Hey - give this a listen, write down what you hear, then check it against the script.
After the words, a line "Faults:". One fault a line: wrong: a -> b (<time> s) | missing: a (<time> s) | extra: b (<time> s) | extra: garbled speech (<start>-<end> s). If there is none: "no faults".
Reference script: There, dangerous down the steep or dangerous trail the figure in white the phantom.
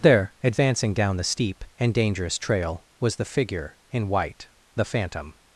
There, advancing down the steep and dangerous trail was the figure in white the phantom.
Faults:
wrong: dangerous -> advancing (0.4 s)
wrong: or -> and (1.8 s)
extra: was (3.0 s)